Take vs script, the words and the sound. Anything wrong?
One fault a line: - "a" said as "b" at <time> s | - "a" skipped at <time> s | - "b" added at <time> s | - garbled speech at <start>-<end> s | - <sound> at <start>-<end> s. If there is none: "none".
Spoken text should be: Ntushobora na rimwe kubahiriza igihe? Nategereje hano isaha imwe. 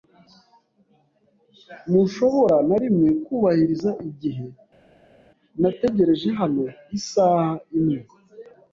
none